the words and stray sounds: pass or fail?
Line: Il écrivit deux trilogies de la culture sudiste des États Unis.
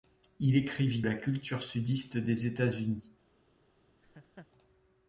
fail